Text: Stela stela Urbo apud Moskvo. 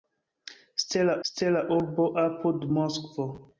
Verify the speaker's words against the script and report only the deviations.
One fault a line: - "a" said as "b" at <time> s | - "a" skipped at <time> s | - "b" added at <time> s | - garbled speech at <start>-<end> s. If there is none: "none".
none